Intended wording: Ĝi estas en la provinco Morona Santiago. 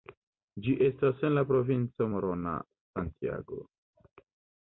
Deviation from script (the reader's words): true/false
false